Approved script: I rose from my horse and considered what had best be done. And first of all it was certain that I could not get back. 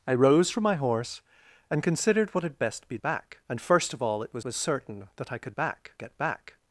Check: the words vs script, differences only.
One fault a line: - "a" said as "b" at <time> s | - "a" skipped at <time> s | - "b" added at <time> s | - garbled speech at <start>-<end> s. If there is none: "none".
- "done" said as "back" at 3.0 s
- "was" added at 4.4 s
- "not" said as "back" at 5.6 s